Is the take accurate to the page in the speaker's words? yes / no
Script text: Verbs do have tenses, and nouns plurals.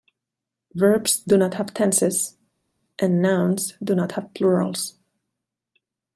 no